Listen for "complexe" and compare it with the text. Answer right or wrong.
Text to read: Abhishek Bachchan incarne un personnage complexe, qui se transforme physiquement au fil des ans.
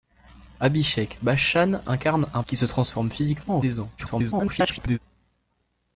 wrong